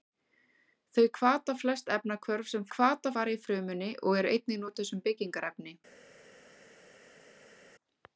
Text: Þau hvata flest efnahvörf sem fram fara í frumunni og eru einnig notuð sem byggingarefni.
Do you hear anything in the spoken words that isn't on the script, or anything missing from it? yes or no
yes